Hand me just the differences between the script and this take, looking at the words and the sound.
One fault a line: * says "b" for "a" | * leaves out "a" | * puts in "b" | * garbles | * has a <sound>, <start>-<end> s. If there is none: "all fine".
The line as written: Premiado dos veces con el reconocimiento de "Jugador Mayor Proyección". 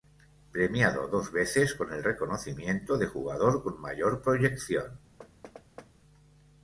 * puts in "con"
* has a thud, 5.2-5.9 s